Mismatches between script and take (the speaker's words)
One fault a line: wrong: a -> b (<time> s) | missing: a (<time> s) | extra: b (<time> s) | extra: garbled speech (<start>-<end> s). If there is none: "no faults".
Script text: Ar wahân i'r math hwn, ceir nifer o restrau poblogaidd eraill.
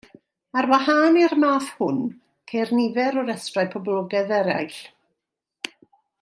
no faults